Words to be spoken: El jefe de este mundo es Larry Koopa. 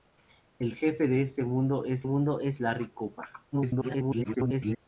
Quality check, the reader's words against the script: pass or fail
fail